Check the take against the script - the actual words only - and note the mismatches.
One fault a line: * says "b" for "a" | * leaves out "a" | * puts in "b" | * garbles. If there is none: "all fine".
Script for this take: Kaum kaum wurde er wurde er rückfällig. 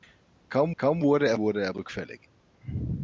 all fine